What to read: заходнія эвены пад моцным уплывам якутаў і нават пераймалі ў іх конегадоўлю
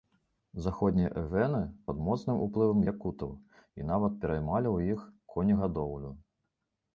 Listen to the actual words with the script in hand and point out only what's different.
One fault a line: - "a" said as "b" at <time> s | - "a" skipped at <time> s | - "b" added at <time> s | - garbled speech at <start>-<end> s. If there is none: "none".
none